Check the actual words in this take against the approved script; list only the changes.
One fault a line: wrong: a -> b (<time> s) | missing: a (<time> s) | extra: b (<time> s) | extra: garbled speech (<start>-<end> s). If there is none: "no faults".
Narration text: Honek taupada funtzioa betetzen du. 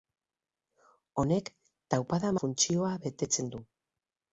no faults